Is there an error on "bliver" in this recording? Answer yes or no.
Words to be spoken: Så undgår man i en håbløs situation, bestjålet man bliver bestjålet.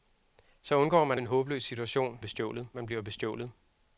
no